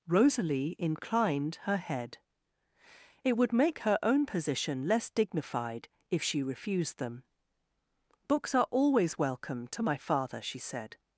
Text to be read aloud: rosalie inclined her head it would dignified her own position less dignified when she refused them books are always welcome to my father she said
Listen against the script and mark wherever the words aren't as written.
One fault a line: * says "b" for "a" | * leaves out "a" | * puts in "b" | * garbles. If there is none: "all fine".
* says "make" for "dignified"
* says "if" for "when"